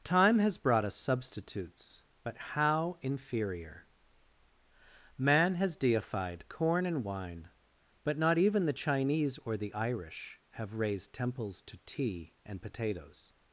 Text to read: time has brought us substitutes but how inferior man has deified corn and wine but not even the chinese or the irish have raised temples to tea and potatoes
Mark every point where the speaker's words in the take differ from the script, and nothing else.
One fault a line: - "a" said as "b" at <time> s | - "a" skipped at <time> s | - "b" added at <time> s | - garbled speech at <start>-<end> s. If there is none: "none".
none